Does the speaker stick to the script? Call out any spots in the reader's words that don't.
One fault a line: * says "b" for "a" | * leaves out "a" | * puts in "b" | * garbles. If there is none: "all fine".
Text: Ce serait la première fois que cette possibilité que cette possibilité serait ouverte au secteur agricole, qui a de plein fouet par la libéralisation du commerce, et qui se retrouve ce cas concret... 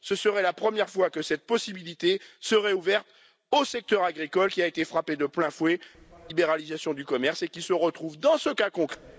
* leaves out "que cette possibilité"
* puts in "été frappé"
* puts in "dans"